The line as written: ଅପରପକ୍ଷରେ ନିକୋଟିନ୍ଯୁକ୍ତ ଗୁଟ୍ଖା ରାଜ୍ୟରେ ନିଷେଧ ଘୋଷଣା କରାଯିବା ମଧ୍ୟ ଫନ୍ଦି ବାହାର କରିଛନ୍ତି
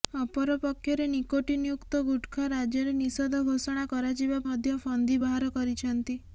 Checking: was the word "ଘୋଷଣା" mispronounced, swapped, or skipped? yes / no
no